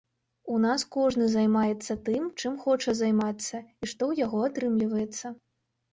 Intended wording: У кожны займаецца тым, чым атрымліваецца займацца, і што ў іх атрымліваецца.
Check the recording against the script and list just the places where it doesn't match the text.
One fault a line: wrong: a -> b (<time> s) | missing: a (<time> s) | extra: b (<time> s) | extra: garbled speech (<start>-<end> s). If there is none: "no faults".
extra: нас (0.6 s)
wrong: атрымліваецца -> хоча (2.6 s)
wrong: іх -> яго (4.2 s)